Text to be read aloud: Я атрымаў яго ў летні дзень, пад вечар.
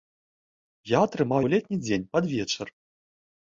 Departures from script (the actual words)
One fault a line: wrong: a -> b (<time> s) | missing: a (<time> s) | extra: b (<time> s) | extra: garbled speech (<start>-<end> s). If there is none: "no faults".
missing: яго (1.4 s)